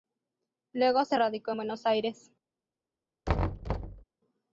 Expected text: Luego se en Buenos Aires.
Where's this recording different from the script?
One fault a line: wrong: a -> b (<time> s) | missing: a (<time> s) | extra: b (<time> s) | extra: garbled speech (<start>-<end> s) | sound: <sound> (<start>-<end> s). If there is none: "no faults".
extra: radicó (1.1 s)
sound: thud (3.3-4.0 s)